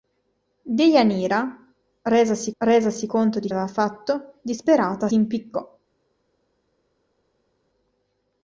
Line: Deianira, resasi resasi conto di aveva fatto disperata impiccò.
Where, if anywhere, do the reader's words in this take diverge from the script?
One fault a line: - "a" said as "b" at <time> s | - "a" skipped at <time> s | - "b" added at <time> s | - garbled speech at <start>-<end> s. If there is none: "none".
none